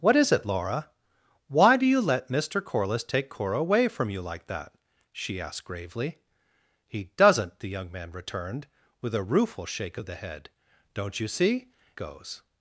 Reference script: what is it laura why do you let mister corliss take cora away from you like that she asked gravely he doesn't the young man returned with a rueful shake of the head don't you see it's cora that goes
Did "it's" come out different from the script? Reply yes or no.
yes